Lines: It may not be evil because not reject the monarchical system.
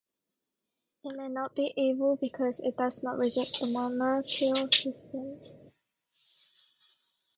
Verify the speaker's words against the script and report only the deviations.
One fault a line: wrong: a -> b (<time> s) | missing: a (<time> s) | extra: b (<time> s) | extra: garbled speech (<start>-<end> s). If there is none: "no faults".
extra: it does (2.6 s)